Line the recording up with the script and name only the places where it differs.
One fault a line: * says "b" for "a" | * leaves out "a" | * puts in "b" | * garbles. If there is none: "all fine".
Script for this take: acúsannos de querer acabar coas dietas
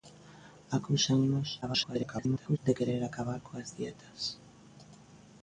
* garbles